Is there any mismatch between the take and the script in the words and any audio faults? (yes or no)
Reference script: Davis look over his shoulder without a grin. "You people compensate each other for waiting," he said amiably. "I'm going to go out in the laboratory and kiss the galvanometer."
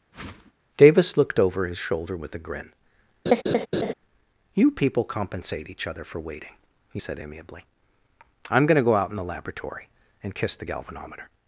yes